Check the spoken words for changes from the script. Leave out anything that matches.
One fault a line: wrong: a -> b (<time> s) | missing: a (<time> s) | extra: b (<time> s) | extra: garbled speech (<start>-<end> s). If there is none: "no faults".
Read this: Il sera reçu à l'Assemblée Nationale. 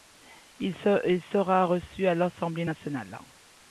no faults